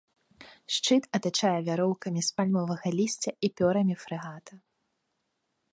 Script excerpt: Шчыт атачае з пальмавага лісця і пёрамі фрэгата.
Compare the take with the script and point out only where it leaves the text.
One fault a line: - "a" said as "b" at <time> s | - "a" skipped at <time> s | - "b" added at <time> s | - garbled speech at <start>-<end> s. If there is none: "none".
- "вяроўкамі" added at 1.7 s